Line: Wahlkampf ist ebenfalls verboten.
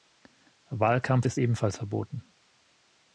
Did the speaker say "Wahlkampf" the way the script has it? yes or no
yes